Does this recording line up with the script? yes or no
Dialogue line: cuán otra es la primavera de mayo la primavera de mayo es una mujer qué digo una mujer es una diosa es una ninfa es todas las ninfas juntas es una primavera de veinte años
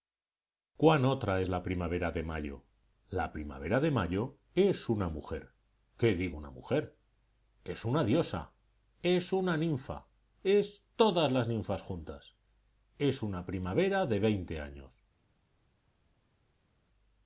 yes